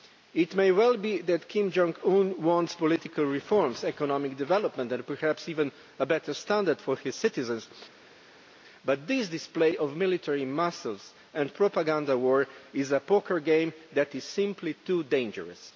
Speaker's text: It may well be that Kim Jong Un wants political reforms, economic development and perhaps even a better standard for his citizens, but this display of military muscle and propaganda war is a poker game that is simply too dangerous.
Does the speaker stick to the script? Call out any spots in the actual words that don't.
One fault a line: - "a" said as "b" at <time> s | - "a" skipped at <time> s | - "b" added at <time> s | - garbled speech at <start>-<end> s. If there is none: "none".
none